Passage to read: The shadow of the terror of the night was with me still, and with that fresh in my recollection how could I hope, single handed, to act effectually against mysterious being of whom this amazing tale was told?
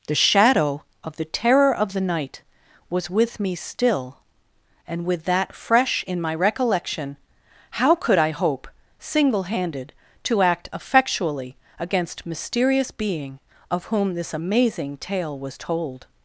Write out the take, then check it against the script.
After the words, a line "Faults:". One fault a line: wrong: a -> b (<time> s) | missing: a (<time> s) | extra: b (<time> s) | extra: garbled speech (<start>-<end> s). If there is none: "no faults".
The shadow of the terror of the night was with me still, and with that fresh in my recollection how could I hope, single handed, to act effectually against mysterious being of whom this amazing tale was told?
Faults:
no faults